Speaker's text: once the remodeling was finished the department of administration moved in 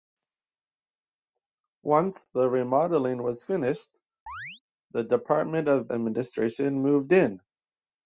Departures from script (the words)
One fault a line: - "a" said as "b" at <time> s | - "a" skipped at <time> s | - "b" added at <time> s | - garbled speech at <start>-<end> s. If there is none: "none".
none